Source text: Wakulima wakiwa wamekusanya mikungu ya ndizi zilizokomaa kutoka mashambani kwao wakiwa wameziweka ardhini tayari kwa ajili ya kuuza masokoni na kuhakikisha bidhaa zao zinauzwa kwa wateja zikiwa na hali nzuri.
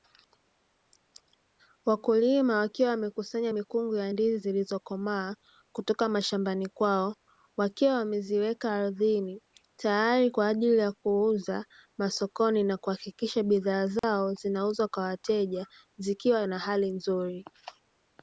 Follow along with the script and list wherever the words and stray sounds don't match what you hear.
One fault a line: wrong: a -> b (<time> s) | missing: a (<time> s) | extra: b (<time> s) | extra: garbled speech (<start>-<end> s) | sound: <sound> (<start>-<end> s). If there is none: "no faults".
sound: dropout (14.0-14.0 s)